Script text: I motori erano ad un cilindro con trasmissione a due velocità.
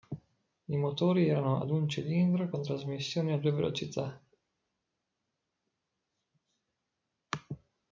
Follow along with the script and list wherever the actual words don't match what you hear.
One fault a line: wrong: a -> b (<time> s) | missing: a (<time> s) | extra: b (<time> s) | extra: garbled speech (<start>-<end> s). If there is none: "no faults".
no faults